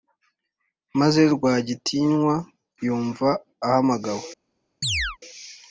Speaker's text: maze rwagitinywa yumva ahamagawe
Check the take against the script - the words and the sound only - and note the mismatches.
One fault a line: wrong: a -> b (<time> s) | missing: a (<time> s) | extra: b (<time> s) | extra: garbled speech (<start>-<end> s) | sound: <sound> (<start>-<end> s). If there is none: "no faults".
sound: chirp (4.8-5.2 s)